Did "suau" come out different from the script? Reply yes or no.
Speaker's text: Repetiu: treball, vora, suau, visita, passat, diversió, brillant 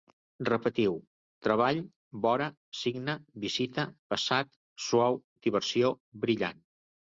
yes